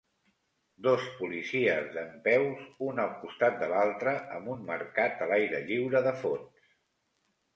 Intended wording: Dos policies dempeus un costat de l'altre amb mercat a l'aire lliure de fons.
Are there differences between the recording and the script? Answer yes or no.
yes